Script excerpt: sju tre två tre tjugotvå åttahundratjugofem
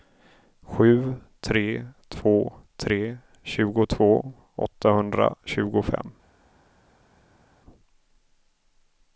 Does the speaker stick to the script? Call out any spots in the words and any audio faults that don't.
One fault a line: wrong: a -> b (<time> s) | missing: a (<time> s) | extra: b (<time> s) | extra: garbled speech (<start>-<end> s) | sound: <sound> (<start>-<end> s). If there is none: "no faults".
no faults